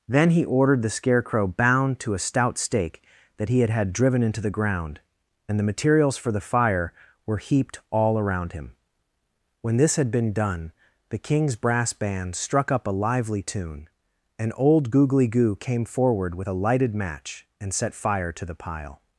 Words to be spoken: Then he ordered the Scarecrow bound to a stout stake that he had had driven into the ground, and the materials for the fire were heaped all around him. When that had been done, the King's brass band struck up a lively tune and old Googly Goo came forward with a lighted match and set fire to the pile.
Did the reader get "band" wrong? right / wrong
right